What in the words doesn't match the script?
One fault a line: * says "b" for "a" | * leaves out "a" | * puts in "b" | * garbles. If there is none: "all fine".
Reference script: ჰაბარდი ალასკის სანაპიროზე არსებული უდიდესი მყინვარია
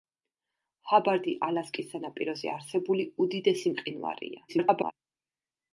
* garbles